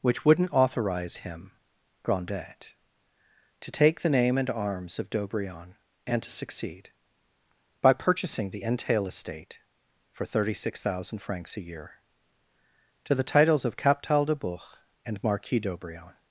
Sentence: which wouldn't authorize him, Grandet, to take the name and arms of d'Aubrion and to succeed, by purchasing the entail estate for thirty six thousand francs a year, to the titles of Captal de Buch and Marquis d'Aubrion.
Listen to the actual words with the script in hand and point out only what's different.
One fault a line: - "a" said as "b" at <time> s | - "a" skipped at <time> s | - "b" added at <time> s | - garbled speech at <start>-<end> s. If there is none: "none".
none